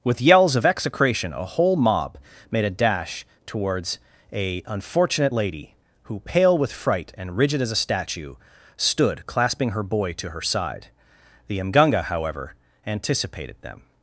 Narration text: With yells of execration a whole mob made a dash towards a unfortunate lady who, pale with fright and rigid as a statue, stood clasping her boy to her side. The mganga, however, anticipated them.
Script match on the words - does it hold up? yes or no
yes